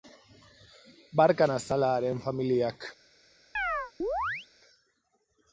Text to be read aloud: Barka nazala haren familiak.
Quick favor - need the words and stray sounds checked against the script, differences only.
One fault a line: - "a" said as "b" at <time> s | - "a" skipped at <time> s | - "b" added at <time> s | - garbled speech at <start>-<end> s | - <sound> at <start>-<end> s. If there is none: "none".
- chirp at 3.5-4.5 s